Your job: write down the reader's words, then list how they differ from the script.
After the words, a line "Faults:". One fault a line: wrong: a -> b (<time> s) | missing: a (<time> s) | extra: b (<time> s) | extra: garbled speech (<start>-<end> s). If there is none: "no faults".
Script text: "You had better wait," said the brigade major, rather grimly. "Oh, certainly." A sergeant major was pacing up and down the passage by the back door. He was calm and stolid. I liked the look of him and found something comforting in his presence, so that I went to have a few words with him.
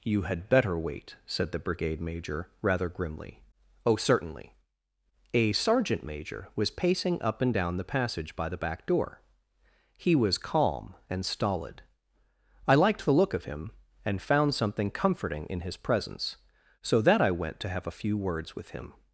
"You had better wait," said the brigade major, rather grimly. "Oh, certainly." A sergeant major was pacing up and down the passage by the back door. He was calm and stolid. I liked the look of him and found something comforting in his presence, so that I went to have a few words with him.
Faults:
no faults